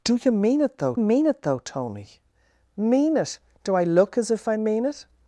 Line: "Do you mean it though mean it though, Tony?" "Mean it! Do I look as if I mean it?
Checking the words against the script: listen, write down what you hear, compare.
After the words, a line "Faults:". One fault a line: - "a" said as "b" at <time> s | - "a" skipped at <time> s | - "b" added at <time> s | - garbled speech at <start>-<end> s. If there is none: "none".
"Do you mean it though mean it though, Tony?" "Mean it! Do I look as if I mean it?
Faults:
none